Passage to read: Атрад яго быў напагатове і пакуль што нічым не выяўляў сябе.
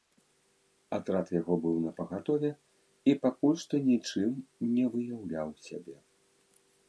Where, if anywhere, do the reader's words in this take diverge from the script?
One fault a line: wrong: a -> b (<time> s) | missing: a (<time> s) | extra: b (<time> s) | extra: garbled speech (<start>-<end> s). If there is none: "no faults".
no faults